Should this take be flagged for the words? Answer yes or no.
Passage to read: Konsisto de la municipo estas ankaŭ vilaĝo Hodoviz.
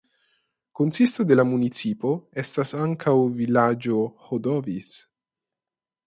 no